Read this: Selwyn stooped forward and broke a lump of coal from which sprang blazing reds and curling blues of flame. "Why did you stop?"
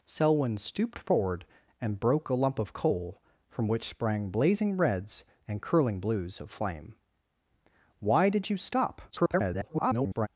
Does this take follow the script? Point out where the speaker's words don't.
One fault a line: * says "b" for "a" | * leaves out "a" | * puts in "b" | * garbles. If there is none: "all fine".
* garbles